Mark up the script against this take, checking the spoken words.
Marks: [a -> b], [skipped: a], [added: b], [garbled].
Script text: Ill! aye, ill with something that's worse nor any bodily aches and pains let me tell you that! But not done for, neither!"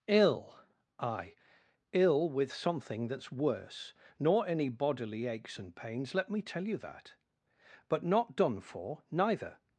Ill! aye, ill with something that's worse nor any bodily aches and pains let me tell you that! But not done for, neither!"